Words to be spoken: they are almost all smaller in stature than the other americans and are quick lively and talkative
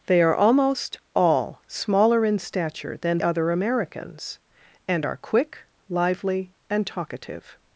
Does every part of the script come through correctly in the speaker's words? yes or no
no